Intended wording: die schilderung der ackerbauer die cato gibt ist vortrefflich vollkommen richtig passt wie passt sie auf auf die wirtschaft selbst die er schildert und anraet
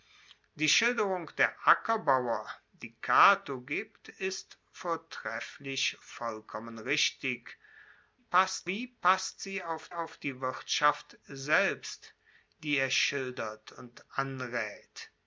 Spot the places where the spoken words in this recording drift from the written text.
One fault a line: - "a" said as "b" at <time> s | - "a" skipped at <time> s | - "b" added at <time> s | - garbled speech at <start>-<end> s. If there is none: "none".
none